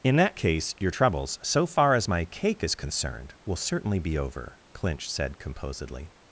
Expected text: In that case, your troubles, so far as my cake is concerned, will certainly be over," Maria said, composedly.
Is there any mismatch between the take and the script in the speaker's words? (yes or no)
yes